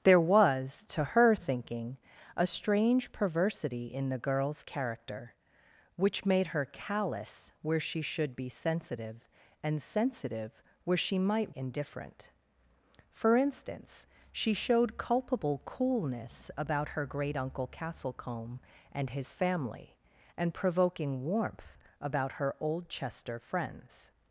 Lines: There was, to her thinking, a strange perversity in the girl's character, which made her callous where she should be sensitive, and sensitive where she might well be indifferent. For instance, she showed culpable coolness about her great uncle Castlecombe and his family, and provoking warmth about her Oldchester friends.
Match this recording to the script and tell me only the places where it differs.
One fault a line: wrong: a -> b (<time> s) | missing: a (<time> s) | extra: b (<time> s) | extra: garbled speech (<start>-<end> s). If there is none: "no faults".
missing: well be (11.6 s)